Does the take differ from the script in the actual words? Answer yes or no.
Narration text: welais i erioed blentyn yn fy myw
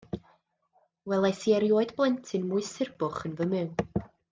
yes